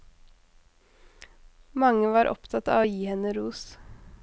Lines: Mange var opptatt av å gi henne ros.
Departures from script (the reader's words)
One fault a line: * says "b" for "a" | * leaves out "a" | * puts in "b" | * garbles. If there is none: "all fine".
all fine